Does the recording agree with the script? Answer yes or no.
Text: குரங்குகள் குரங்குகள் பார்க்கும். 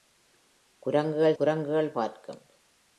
yes